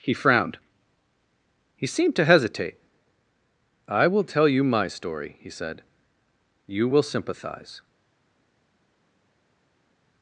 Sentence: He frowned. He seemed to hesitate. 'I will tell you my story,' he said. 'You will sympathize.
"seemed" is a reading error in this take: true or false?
false